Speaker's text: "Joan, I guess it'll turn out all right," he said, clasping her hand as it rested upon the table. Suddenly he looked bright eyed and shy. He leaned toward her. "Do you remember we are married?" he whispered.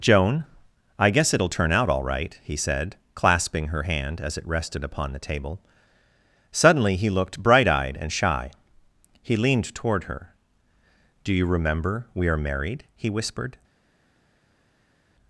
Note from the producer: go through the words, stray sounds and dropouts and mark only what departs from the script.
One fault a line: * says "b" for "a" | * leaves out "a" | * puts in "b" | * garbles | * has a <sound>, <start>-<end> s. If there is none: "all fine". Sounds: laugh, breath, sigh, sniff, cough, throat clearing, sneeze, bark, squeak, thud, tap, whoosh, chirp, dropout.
all fine